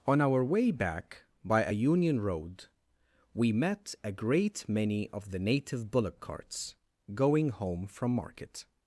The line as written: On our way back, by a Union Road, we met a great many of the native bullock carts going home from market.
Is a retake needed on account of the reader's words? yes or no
no